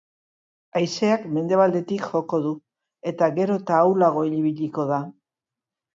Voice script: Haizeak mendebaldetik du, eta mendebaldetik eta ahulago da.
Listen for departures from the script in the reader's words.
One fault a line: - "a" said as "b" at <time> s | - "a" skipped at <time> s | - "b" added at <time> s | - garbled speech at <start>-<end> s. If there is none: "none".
- "joko" added at 2.1 s
- "mendebaldetik" said as "gero" at 3.4 s
- "ibiliko" added at 4.4 s